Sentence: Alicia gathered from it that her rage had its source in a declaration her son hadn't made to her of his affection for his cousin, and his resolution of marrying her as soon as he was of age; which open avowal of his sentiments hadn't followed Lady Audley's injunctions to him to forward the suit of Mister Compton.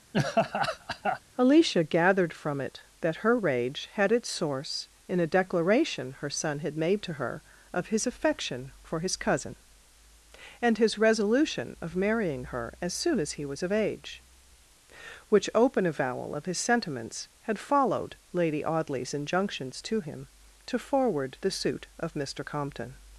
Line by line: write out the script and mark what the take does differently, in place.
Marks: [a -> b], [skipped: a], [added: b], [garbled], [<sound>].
[laugh] Alicia gathered from it that her rage had its source in a declaration her son [hadn't -> had] made to her of his affection for his cousin, and his resolution of marrying her as soon as he was of age; which open avowal of his sentiments [hadn't -> had] followed Lady Audley's injunctions to him to forward the suit of Mister Compton.